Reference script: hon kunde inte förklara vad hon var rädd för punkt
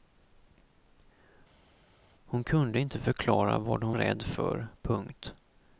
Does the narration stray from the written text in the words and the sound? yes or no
yes